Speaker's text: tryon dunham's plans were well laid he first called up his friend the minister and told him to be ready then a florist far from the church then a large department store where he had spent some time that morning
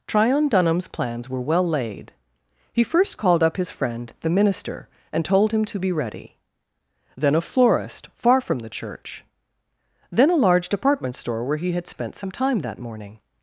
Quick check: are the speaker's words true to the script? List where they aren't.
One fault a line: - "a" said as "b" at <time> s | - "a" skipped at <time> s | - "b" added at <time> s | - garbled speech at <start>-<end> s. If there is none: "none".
none